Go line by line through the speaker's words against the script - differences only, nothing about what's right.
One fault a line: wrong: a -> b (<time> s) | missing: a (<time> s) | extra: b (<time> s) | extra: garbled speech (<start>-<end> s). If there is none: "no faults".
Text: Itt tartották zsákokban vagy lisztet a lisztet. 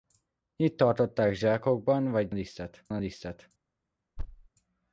no faults